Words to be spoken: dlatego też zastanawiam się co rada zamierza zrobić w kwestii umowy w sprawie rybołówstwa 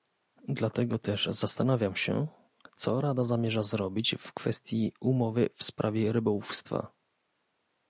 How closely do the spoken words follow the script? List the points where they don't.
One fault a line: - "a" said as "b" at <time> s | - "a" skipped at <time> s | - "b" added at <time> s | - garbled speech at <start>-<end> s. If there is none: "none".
none